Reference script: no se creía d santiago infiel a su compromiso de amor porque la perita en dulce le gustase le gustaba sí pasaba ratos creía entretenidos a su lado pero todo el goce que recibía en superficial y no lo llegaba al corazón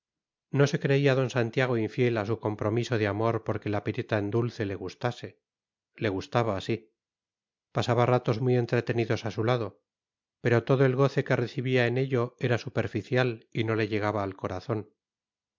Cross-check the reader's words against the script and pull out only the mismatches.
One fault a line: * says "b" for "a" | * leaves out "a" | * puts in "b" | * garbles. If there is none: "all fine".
* says "muy" for "creía"
* puts in "ello era"
* says "le" for "lo"